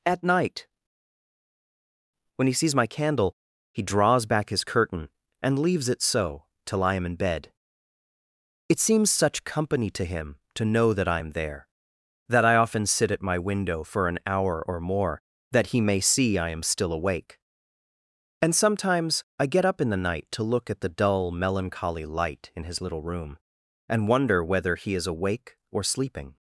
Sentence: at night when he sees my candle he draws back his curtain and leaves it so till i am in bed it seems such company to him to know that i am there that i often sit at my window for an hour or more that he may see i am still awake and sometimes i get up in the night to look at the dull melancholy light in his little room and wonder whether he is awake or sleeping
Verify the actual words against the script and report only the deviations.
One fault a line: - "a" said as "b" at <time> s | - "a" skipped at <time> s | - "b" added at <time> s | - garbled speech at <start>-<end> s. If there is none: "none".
none